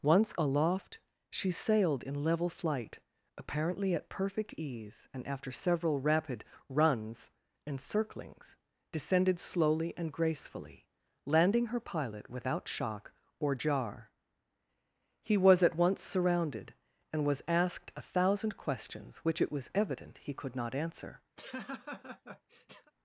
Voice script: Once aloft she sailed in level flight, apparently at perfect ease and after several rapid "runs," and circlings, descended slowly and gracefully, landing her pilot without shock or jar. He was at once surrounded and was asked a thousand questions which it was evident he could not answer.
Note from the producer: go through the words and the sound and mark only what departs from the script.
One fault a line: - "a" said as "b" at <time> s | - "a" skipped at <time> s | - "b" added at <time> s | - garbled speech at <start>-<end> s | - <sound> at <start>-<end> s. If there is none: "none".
- laugh at 21.4-22.9 s